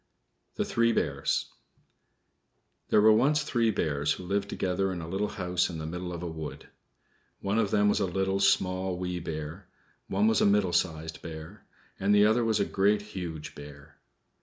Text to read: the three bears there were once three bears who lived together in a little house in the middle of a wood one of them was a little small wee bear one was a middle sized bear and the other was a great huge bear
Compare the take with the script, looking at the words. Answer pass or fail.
pass